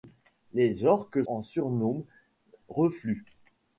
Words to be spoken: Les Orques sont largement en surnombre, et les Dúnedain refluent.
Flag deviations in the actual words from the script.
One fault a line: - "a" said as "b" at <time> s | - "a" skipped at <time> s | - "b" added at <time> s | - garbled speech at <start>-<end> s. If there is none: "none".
- "sont largement" skipped at 1.2 s
- "et les Dúnedain" skipped at 2.0 s